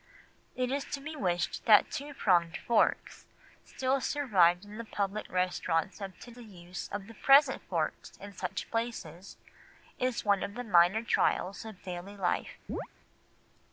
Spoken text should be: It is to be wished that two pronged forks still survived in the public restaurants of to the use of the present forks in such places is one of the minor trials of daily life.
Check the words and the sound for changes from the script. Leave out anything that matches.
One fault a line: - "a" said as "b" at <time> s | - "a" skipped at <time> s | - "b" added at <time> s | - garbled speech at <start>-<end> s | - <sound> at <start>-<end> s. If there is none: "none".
- chirp at 12.7-12.9 s